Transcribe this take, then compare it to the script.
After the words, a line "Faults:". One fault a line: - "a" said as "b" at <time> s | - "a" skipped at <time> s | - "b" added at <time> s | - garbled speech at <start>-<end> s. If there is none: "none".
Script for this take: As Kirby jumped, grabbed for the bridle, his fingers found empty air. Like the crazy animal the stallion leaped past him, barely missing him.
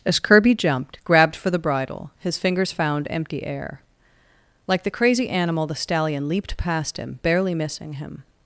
As Kirby jumped, grabbed for the bridle, his fingers found empty air. Like the crazy animal the stallion leaped past him, barely missing him.
Faults:
none